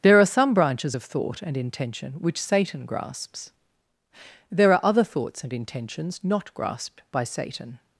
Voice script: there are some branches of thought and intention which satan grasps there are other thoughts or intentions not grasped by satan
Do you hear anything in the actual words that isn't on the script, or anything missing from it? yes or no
yes